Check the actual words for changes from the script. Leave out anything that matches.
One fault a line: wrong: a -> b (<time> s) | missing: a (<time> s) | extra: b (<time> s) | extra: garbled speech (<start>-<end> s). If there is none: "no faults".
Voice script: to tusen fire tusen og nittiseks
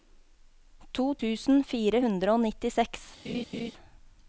wrong: tusen -> hundre (2.1 s)